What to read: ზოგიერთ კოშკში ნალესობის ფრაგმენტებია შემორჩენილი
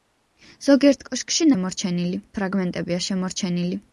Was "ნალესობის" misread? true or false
true